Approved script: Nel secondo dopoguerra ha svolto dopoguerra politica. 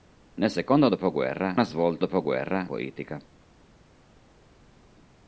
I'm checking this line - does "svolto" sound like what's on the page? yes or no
yes